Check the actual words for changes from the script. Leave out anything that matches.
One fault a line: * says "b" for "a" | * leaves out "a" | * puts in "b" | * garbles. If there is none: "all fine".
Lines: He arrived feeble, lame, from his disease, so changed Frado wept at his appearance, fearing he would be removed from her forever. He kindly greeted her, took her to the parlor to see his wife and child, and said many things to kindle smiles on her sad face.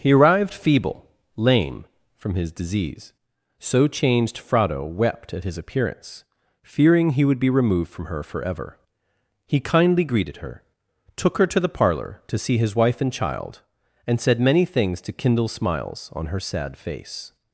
all fine